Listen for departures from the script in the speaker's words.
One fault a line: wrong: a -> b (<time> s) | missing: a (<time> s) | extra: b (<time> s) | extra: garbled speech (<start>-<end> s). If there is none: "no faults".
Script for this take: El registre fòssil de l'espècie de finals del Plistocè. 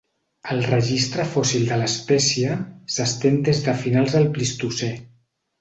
extra: s'estén des (3.0 s)